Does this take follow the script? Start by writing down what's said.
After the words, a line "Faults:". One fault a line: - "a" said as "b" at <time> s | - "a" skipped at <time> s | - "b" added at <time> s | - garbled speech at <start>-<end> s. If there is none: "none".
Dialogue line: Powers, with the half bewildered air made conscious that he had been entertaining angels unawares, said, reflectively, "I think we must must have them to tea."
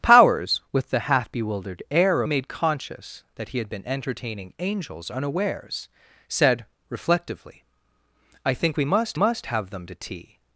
Powers, with the half bewildered air made conscious that he had been entertaining angels unawares, said, reflectively, "I think we must must have them to tea."
Faults:
none